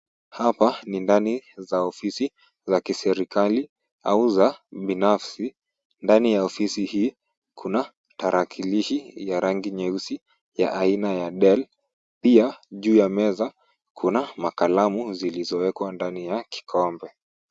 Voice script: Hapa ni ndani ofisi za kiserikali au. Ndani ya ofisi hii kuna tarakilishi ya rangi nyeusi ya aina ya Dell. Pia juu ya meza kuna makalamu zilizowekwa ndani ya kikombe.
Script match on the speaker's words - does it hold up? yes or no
no